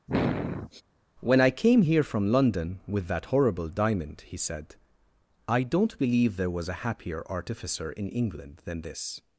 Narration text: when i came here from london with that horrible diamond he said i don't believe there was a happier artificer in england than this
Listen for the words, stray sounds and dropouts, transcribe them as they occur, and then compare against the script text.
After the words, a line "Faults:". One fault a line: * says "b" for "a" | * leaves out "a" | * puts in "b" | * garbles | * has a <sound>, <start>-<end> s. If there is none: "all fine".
when i came here from london with that horrible diamond he said i don't believe there was a happier artificer in england than this
Faults:
* has a sniff, 0.1-0.8 s